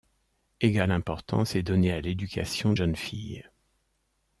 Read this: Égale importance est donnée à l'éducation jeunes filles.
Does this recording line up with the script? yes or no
yes